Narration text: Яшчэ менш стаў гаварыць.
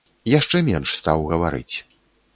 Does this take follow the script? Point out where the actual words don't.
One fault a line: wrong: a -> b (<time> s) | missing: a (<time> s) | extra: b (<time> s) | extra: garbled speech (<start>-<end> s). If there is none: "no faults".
no faults